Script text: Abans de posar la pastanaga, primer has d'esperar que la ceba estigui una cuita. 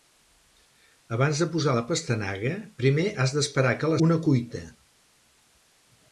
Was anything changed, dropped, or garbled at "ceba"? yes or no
yes